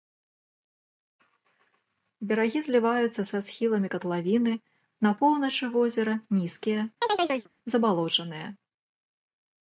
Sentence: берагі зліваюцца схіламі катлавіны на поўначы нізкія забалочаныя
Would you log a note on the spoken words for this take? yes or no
yes